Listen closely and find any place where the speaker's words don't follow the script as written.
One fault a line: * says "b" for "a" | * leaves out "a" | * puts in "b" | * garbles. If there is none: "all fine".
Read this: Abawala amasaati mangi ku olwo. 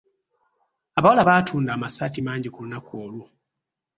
* puts in "baatunda"
* puts in "lunaku"